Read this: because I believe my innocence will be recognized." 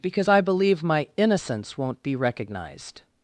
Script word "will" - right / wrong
wrong